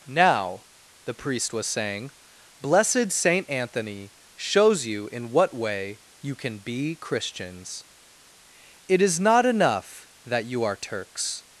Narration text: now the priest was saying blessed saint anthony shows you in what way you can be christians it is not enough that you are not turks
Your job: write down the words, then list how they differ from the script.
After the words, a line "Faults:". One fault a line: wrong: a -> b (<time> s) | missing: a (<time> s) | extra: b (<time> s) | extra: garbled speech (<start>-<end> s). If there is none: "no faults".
now the priest was saying blessed saint anthony shows you in what way you can be christians it is not enough that you are turks
Faults:
missing: not (10.8 s)